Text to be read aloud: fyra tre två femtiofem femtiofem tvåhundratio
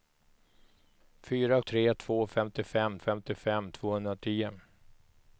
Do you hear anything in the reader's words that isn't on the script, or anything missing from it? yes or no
no